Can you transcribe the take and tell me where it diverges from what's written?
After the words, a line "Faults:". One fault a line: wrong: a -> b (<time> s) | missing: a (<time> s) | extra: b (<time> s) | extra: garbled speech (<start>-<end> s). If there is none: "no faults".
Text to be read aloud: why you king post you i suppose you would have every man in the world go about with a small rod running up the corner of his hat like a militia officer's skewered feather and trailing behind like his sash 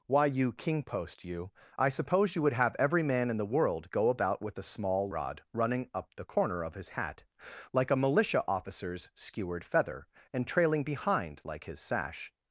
why you king post you i suppose you would have every man in the world go about with a small rod running up the corner of his hat like a militia officer's skewered feather and trailing behind like his sash
Faults:
no faults